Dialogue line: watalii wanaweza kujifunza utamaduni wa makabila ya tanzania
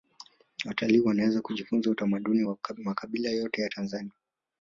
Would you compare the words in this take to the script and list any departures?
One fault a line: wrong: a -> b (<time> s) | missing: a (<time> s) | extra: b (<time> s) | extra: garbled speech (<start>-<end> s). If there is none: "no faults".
extra: yote (3.3 s)